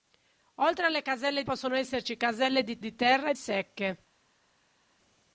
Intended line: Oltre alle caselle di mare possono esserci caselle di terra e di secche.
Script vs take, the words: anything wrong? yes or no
yes